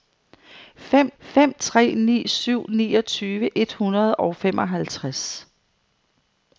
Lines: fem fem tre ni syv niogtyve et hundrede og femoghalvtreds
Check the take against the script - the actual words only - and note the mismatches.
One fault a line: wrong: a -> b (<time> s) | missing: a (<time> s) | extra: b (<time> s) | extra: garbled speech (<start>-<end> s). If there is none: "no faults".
no faults